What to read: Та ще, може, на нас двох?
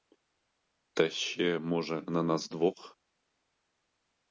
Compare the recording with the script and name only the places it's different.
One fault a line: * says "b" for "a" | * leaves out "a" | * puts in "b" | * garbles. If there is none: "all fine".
all fine